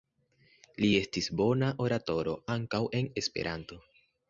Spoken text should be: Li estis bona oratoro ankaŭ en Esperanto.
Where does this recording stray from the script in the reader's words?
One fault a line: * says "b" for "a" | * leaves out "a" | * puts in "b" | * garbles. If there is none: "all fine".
all fine